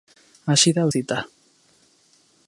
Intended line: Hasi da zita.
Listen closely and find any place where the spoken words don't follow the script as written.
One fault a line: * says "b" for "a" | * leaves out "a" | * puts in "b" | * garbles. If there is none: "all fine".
all fine